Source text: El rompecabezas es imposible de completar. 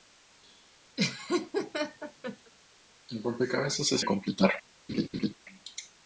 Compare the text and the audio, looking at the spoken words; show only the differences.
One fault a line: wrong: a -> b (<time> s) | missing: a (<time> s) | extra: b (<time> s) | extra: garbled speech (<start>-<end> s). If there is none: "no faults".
missing: imposible (4.0 s)